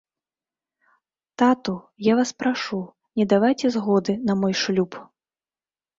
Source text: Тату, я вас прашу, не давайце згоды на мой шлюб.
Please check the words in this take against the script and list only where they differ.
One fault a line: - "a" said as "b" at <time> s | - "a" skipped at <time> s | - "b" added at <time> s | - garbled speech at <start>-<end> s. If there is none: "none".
none